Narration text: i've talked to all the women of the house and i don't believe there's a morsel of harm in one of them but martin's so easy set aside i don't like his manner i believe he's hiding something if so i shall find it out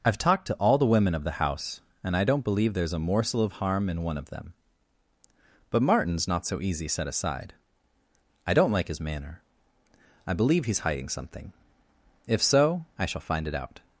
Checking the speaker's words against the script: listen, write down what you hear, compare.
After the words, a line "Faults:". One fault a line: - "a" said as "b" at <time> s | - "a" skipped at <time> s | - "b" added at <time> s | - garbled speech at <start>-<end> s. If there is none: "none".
i've talked to all the women of the house and i don't believe there's a morsel of harm in one of them but martin's not so easy set aside i don't like his manner i believe he's hiding something if so i shall find it out
Faults:
- "not" added at 6.3 s